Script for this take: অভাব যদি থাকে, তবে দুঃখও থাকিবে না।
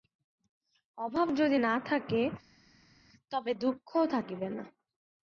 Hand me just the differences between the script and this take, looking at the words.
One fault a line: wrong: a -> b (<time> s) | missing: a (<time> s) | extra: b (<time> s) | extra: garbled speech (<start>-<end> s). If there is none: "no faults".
extra: না (1.6 s)